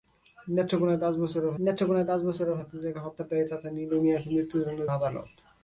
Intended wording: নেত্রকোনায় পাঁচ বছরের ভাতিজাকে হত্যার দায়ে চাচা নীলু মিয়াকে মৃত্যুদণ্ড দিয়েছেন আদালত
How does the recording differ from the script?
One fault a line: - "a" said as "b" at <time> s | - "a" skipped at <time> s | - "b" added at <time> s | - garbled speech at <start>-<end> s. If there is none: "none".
- "নেত্রকোনায় পাঁচ বছরের" added at 1.6 s
- "দিয়েছেন" skipped at 4.8 s